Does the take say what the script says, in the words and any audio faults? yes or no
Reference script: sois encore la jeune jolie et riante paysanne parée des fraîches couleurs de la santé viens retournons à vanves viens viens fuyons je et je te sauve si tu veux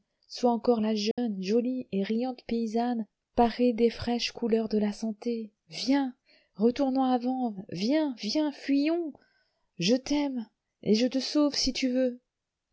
no